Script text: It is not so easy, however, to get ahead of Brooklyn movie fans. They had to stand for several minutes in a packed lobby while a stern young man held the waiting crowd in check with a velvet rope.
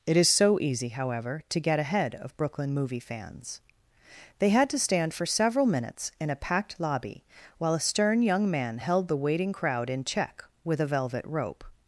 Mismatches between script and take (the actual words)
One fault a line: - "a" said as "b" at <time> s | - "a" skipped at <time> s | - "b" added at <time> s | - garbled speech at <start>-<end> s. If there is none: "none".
- "not" skipped at 0.3 s